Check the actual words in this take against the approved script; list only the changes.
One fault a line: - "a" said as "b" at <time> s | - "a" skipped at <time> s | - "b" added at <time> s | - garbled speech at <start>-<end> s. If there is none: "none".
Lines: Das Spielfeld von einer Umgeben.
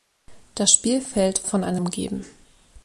none